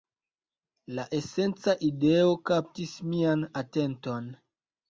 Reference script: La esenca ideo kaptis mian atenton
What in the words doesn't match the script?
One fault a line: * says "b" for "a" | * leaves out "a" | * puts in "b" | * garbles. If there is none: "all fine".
all fine